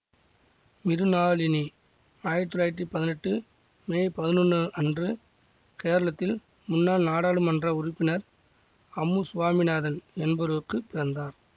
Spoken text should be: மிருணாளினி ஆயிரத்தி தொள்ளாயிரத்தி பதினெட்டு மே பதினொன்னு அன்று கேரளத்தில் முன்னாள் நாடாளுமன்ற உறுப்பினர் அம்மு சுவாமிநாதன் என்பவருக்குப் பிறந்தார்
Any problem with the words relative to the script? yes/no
no